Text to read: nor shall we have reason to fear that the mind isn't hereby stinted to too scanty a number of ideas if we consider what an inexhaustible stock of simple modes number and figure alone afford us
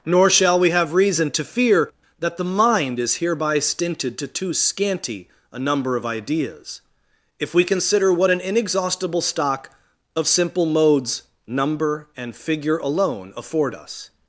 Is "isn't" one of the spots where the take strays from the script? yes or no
yes